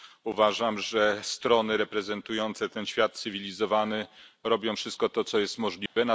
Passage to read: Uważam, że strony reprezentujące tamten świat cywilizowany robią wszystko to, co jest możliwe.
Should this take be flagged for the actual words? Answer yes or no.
yes